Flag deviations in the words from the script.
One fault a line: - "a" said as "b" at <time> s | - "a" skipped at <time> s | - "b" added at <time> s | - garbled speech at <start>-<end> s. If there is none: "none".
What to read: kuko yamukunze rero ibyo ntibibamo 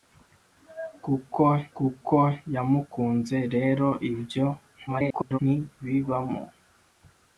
- "kuko" added at 1.8 s
- garbled speech at 4.9-5.4 s